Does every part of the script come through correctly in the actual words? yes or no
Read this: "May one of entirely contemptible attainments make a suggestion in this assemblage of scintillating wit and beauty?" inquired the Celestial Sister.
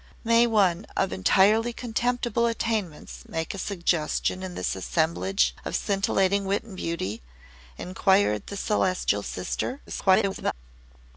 no